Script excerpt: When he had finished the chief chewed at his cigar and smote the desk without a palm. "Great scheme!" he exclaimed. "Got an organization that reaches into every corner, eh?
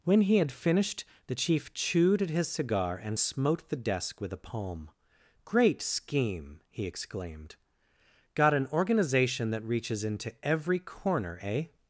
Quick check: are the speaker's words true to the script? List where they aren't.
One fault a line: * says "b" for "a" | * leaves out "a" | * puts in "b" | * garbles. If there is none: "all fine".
* says "with" for "without"